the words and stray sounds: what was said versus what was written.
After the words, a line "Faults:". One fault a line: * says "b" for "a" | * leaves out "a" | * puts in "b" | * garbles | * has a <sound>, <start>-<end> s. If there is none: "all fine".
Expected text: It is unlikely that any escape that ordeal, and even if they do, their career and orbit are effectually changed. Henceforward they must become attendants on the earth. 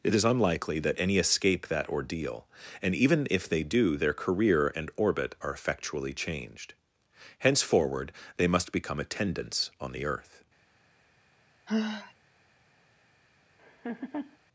It is unlikely that any escape that ordeal, and even if they do, their career and orbit are effectually changed. Henceforward they must become attendants on the earth.
Faults:
* has a sigh, 11.7-12.1 s
* has a laugh, 13.6-14.4 s